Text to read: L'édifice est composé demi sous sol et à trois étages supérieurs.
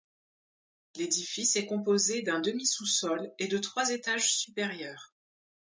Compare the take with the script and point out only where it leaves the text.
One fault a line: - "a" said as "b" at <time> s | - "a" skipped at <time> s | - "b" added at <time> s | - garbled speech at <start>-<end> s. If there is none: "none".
- "d'un" added at 2.2 s
- "à" said as "de" at 3.5 s